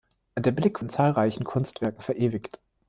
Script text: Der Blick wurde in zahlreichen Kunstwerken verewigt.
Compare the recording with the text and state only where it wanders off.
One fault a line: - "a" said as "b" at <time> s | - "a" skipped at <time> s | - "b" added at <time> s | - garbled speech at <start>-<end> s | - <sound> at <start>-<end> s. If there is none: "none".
- "wurde" skipped at 0.8 s